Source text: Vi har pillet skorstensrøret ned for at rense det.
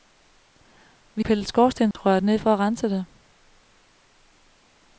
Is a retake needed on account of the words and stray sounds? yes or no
yes